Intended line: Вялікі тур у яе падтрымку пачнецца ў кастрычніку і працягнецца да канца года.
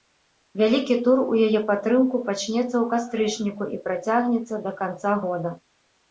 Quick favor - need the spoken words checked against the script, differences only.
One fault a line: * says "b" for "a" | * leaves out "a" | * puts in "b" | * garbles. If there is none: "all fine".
all fine